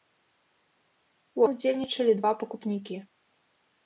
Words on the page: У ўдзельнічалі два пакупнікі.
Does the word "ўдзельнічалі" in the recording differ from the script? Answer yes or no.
no